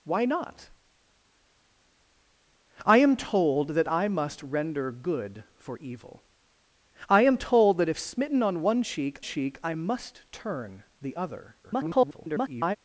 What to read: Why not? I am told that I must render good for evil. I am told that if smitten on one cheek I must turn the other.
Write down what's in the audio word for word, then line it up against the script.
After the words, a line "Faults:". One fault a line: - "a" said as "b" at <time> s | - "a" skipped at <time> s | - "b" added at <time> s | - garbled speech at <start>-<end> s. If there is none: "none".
Why not? I am told that I must render good for evil. I am told that if smitten on one cheek cheek I must turn the other. [garbled]
Faults:
- "cheek" added at 9.2 s
- garbled speech at 11.6-12.8 s